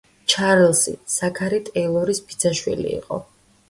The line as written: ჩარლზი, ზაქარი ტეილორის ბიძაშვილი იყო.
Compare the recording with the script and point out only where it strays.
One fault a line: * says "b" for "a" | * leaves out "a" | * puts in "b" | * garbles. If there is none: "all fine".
all fine